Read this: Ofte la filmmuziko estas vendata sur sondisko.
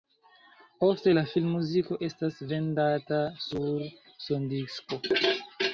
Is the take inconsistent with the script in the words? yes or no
no